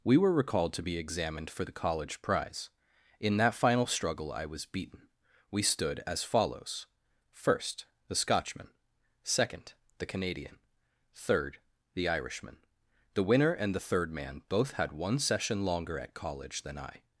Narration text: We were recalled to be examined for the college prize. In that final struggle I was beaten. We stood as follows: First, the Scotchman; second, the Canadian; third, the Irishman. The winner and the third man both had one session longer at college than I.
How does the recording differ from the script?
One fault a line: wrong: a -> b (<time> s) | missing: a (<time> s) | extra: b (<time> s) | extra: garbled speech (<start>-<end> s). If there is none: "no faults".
no faults